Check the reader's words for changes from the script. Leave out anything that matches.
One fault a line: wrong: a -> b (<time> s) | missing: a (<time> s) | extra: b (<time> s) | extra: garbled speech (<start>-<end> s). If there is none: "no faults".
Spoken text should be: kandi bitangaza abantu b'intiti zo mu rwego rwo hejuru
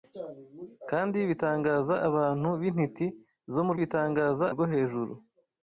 wrong: rwego -> bitangaza (3.8 s)